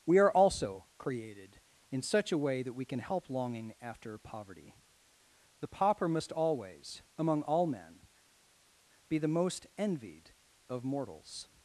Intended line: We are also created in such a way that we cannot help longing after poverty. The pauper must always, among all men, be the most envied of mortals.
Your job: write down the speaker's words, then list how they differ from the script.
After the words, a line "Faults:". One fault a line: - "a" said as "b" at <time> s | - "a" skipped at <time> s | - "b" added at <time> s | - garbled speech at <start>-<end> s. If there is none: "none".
We are also created in such a way that we can help longing after poverty. The pauper must always, among all men, be the most envied of mortals.
Faults:
- "cannot" said as "can" at 2.9 s